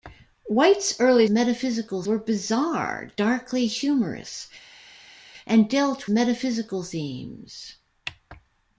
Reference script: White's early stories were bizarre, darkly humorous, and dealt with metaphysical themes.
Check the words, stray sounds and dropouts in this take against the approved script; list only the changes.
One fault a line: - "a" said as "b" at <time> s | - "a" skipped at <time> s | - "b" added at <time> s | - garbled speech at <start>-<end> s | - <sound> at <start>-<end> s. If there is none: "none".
- "stories" said as "metaphysical" at 1.3 s
- "with" skipped at 6.1 s